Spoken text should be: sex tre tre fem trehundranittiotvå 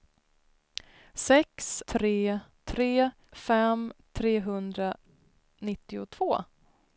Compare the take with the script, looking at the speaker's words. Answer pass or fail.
pass